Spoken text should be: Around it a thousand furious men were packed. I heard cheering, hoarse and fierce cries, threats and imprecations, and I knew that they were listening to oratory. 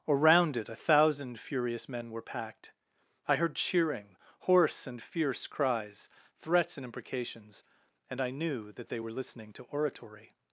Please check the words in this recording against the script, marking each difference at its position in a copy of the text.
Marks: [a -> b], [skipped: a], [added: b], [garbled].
Around it a thousand furious men were packed. I heard cheering, hoarse and fierce cries, threats and imprecations, and I knew that they were listening to oratory.